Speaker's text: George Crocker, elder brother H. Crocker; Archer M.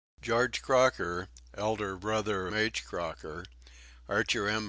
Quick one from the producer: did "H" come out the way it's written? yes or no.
yes